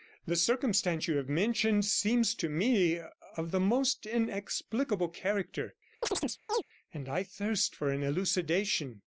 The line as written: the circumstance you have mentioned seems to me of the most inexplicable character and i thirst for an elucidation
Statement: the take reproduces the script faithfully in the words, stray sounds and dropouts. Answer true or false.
false